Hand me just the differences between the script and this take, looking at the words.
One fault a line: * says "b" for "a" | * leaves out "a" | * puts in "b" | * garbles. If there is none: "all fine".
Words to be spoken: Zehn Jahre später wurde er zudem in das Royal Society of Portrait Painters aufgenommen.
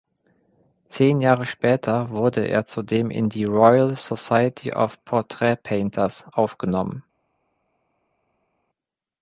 * says "die" for "das"